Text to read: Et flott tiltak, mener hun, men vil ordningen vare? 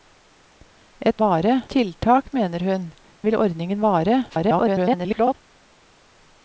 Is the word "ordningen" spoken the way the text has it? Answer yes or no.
yes